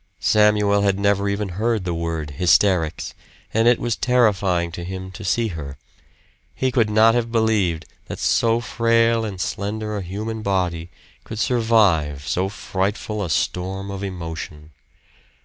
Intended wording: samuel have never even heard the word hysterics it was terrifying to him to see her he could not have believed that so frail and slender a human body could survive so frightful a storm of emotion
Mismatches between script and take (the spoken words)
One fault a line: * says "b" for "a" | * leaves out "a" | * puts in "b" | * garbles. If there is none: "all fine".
* says "had" for "have"
* puts in "and"